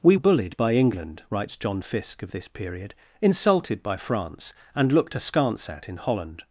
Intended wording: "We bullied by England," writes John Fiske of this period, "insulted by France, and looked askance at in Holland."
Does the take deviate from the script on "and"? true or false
false